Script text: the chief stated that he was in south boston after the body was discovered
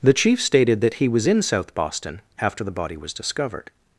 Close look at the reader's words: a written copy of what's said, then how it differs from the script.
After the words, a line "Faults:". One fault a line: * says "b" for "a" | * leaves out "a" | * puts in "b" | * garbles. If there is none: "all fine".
the chief stated that he was in south boston after the body was discovered
Faults:
all fine